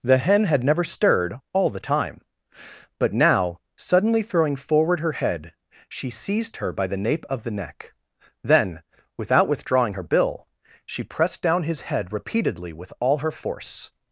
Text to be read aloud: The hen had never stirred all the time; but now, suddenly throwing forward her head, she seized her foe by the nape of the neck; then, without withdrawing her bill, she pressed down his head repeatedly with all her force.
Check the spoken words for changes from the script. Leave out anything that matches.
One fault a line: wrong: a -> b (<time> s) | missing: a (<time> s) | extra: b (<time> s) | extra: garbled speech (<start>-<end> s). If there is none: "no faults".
missing: foe (6.7 s)